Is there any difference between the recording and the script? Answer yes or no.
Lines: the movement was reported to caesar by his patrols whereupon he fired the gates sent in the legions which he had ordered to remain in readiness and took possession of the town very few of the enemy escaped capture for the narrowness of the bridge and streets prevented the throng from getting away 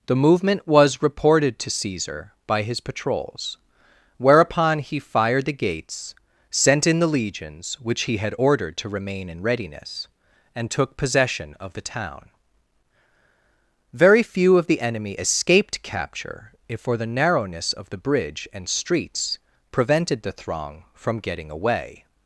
yes